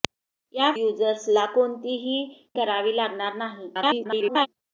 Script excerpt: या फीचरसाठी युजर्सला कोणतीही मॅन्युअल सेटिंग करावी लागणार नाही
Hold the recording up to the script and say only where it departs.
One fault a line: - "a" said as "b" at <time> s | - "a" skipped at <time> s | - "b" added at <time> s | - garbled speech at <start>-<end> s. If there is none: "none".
- "फीचरसाठी" skipped at 0.7 s
- "मॅन्युअल सेटिंग" skipped at 2.2 s
- garbled speech at 3.7-4.5 s